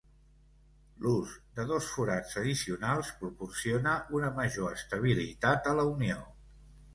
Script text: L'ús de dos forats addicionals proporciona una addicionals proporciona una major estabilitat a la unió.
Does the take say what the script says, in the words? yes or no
no